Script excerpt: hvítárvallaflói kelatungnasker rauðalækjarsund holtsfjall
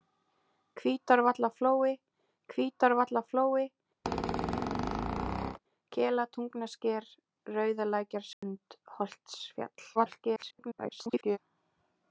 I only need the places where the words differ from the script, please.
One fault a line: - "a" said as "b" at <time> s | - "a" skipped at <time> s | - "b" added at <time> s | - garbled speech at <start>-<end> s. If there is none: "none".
- "hvítárvallaflói" added at 2.5 s
- garbled speech at 9.9-11.4 s